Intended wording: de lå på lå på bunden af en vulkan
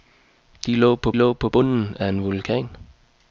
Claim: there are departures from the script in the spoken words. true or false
false